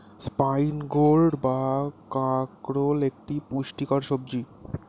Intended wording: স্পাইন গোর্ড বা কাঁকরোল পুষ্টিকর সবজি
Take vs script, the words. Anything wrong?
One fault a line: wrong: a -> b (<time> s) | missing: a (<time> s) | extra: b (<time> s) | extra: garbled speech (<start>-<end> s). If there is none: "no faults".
extra: একটি (3.1 s)